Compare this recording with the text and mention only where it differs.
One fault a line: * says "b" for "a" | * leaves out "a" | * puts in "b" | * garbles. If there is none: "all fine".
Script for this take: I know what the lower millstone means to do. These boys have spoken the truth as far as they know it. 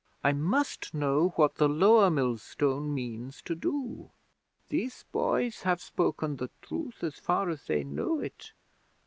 * puts in "must"